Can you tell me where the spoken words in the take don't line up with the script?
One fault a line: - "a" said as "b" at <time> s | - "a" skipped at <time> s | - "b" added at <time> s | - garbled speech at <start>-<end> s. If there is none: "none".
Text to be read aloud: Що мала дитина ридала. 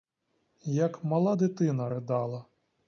- "Що" said as "Як" at 0.6 s